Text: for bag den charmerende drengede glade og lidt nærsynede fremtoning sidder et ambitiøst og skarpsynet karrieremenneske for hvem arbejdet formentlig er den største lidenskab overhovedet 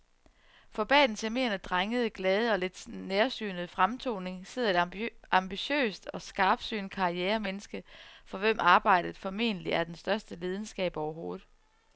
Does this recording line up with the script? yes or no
yes